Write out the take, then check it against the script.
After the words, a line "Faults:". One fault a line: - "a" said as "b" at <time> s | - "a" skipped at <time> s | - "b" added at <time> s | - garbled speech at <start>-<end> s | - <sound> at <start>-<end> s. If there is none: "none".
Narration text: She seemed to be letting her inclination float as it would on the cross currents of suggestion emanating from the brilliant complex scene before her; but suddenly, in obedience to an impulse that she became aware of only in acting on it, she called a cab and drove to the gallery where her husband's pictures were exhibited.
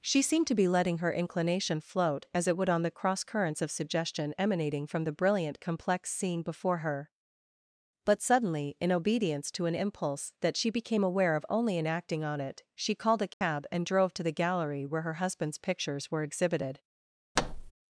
She seemed to be letting her inclination float as it would on the cross currents of suggestion emanating from the brilliant complex scene before her; but suddenly, in obedience to an impulse that she became aware of only in acting on it, she called a cab and drove to the gallery where her husband's pictures were exhibited.
Faults:
- dropout at 13.3-13.4 s
- thud at 17.4-17.7 s